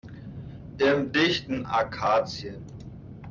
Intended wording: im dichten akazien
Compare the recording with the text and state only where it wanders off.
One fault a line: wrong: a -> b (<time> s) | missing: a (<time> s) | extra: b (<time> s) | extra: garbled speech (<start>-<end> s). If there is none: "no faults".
no faults